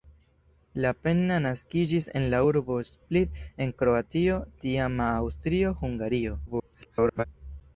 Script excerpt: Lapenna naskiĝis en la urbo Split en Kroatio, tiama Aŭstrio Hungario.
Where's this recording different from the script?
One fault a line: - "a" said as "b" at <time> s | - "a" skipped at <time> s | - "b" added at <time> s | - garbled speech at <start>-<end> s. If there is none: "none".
- garbled speech at 6.5-7.2 s